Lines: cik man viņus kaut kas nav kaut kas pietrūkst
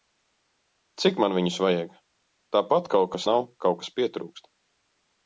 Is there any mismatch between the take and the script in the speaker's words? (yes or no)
yes